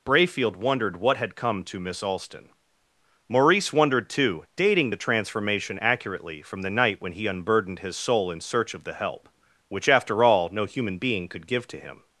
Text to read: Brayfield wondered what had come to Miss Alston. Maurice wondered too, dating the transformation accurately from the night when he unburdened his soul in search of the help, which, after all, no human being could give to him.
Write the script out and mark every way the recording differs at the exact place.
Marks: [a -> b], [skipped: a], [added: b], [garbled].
Brayfield wondered what had come to Miss Alston. Maurice wondered too, dating the transformation accurately from the night when he unburdened his soul in search of the help, which, after all, no human being could give to him.